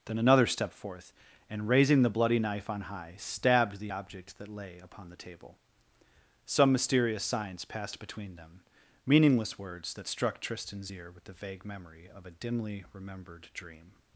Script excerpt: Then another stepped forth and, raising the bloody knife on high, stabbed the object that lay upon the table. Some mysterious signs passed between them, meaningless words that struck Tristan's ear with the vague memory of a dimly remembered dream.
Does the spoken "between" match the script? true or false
true